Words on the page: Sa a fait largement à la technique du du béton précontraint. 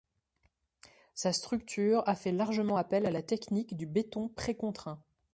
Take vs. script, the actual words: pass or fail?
fail